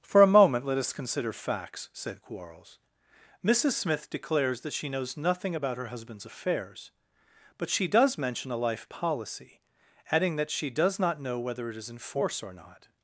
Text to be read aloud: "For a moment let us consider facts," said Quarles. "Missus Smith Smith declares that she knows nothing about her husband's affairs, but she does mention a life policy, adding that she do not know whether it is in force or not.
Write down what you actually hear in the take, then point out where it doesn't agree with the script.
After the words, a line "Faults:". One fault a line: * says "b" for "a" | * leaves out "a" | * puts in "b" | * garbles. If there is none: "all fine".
"For a moment let us consider facts," said Quarles. "Missus Smith declares that she knows nothing about her husband's affairs, but she does mention a life policy, adding that she does not know whether it is in force or not.
Faults:
* leaves out "Smith"
* says "does" for "do"